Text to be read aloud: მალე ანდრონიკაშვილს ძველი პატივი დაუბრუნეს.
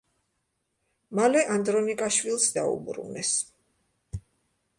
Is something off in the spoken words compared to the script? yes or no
yes